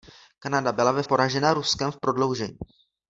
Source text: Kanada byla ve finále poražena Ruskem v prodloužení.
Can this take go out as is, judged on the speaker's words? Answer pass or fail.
fail